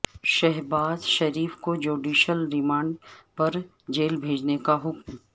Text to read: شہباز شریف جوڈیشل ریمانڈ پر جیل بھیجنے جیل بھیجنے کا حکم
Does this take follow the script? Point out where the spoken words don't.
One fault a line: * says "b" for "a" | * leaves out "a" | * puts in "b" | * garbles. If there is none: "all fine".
* puts in "کو"
* leaves out "جیل بھیجنے"